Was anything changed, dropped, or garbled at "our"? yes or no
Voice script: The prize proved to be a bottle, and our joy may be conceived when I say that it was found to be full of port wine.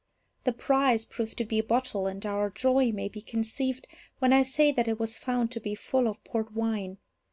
no